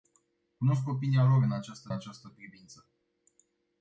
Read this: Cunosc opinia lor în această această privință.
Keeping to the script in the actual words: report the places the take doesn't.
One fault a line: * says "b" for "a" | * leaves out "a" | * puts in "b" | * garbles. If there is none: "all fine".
all fine